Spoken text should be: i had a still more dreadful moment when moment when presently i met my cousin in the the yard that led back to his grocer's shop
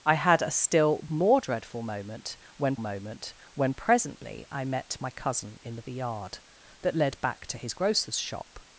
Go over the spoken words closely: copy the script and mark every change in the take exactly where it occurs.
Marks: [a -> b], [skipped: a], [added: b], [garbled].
i had a still more dreadful moment when moment when presently i met my cousin in the the yard that led back to his grocer's shop